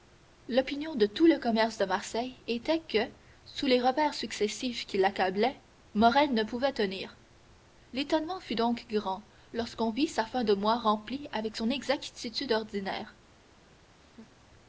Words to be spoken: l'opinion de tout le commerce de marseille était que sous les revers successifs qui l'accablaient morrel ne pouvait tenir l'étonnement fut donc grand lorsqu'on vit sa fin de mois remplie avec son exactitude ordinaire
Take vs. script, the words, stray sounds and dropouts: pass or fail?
fail